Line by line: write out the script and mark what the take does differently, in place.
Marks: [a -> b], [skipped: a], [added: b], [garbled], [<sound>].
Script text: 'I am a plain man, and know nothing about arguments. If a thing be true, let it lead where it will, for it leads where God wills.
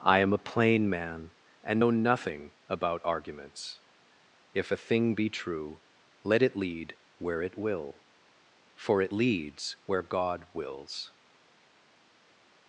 'I am a plain man, and know nothing about arguments. If a thing be true, let it lead where it will, for it leads where God wills.